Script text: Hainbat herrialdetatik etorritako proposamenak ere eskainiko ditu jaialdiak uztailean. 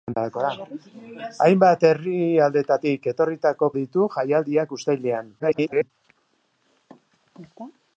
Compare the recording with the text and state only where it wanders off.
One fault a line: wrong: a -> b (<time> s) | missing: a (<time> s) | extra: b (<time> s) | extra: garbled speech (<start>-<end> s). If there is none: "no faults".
missing: proposamenak ere eskainiko (3.7 s)
extra: garbled speech (5.4-5.9 s)